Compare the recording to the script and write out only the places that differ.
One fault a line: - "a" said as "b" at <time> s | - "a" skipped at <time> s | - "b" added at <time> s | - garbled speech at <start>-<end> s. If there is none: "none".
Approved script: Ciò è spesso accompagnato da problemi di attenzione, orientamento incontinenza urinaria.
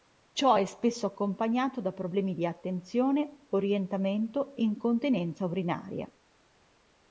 none